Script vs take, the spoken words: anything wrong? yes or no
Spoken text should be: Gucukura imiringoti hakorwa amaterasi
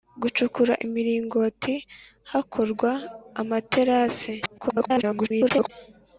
yes